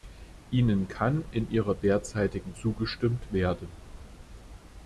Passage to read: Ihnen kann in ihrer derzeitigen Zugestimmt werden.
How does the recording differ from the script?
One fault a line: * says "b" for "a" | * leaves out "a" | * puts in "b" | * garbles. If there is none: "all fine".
all fine